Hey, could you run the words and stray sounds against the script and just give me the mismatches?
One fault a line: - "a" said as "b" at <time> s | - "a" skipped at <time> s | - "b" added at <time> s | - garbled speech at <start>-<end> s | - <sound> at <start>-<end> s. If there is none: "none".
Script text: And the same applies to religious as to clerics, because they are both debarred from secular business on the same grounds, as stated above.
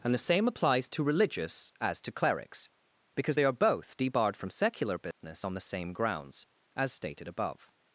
- dropout at 5.1-5.2 s